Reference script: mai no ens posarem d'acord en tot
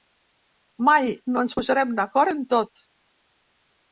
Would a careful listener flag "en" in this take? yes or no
no